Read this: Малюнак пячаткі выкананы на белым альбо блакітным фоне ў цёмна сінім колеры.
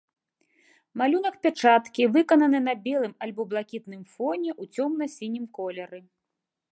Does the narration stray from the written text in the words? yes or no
no